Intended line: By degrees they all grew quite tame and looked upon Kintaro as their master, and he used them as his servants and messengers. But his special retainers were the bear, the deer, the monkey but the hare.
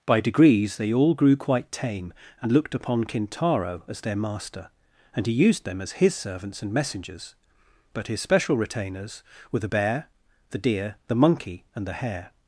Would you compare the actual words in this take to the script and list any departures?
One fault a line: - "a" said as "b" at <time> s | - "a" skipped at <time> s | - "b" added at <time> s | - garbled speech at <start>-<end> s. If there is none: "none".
- "but" said as "and" at 11.7 s